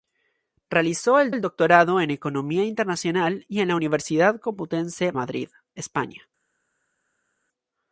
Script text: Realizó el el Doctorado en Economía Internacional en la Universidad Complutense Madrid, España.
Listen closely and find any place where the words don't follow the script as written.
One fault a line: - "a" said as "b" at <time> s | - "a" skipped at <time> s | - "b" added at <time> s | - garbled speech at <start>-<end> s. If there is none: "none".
none